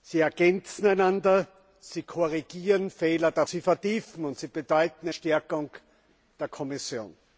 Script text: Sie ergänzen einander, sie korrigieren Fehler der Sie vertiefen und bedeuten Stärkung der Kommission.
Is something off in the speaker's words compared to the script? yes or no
no